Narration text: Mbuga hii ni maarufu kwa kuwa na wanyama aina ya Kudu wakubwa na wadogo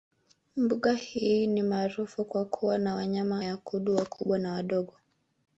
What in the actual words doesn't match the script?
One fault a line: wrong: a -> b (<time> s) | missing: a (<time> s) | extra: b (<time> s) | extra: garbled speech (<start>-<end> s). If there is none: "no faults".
missing: aina (3.4 s)